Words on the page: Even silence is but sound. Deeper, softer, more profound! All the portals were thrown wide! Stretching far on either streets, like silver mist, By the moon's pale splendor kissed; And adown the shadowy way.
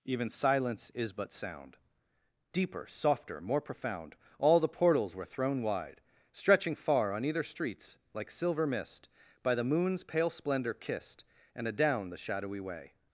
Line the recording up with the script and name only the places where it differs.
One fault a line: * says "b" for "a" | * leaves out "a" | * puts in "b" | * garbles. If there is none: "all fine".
all fine